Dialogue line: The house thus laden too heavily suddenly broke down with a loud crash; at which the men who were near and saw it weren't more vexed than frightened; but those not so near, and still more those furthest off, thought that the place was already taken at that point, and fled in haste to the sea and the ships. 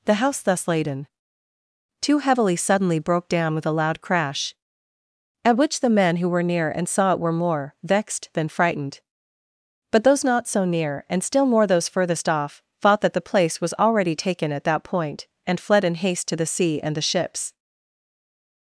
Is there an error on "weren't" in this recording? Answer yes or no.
yes